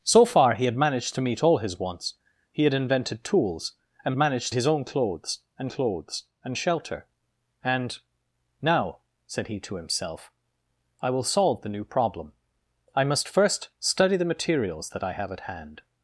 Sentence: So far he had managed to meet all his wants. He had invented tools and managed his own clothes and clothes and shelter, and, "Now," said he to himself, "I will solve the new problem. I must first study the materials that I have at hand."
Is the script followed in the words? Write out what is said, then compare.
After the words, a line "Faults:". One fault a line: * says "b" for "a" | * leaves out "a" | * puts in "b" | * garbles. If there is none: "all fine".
So far he had managed to meet all his wants. He had invented tools and managed his own clothes and clothes and shelter, and, "Now," said he to himself, "I will solve the new problem. I must first study the materials that I have at hand."
Faults:
all fine